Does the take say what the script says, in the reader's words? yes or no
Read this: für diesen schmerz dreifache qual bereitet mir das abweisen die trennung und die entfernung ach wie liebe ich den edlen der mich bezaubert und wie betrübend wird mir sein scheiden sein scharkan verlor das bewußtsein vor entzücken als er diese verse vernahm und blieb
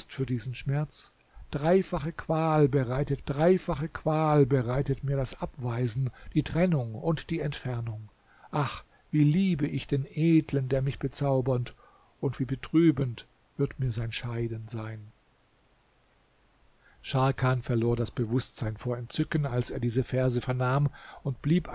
no